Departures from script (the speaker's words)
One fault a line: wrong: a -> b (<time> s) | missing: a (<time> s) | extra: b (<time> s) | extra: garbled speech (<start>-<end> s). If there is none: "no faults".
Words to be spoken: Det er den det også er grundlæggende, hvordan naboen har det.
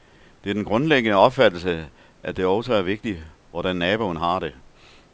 extra: grundlæggende opfattelse at (0.7 s)
wrong: grundlæggende -> vigtigt (2.8 s)